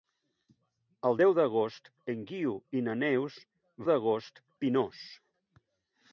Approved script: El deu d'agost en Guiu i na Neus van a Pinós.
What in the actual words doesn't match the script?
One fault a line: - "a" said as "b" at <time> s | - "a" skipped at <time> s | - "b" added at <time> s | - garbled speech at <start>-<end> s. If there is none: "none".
- "van" said as "d'agost" at 3.9 s